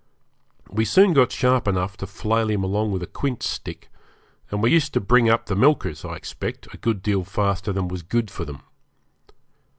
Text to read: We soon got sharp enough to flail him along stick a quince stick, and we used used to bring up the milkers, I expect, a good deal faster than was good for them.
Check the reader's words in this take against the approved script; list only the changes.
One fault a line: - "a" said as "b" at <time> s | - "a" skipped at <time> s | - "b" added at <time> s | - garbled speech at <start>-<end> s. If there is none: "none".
- "stick" said as "with" at 2.9 s
- "used" skipped at 4.9 s